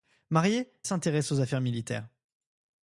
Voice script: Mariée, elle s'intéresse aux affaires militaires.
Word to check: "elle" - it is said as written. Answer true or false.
false